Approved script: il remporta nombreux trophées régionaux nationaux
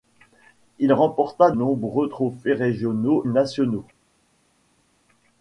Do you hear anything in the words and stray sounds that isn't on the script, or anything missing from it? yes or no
no